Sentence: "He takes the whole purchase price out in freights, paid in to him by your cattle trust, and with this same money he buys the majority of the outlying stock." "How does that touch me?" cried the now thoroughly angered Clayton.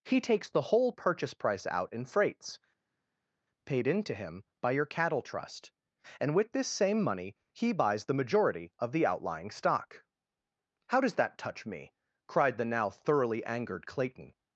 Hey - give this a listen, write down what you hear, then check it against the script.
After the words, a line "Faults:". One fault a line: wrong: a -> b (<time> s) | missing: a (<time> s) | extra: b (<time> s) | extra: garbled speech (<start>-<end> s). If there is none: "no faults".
"He takes the whole purchase price out in freights, paid in to him by your cattle trust, and with this same money he buys the majority of the outlying stock." "How does that touch me?" cried the now thoroughly angered Clayton.
Faults:
no faults